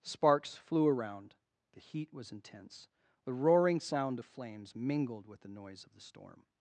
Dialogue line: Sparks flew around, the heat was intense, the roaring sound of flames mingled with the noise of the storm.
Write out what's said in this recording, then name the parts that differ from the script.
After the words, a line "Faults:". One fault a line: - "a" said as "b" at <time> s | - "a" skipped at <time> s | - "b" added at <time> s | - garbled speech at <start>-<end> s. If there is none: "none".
Sparks flew around, the heat was intense, the roaring sound of flames mingled with the noise of the storm.
Faults:
none